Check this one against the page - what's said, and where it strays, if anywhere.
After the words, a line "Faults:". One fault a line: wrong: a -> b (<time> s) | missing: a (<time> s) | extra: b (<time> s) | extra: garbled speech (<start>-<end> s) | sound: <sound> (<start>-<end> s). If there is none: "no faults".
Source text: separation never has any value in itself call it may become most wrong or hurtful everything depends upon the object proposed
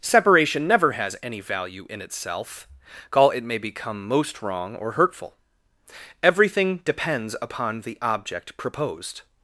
separation never has any value in itself call it may become most wrong or hurtful everything depends upon the object proposed
Faults:
no faults